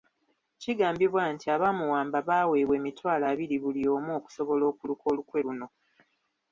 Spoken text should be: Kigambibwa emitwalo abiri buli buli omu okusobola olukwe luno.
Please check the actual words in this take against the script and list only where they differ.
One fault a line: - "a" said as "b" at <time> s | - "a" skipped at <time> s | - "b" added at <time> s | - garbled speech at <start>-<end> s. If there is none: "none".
- "nti abaamuwamba baaweebwa" added at 1.3 s
- "buli" skipped at 3.8 s
- "okuluka" added at 4.7 s